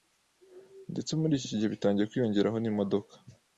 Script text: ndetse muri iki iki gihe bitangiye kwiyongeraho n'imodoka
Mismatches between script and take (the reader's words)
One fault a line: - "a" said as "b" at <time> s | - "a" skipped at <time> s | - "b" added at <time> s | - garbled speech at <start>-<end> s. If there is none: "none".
none